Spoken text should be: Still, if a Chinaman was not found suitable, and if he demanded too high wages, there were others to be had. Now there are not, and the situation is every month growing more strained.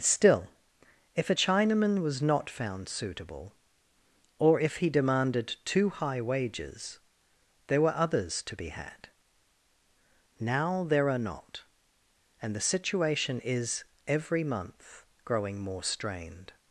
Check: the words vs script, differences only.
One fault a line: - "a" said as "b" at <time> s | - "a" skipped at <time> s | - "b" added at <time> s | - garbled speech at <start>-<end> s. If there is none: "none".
- "and" said as "or" at 4.4 s